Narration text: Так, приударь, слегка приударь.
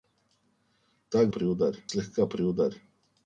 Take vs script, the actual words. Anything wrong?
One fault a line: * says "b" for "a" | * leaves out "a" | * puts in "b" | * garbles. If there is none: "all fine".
all fine